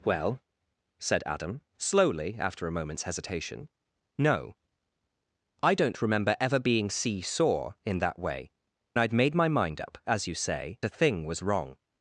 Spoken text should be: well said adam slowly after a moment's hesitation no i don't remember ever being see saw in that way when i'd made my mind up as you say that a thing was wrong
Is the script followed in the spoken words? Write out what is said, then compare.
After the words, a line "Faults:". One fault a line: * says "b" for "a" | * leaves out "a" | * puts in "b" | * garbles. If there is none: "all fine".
well said adam slowly after a moment's hesitation no i don't remember ever being see saw in that way i'd made my mind up as you say a thing was wrong
Faults:
* leaves out "when"
* leaves out "that"